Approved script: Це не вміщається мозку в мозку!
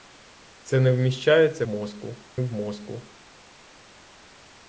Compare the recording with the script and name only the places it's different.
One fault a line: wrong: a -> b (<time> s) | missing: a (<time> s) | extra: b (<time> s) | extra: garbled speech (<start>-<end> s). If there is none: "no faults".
no faults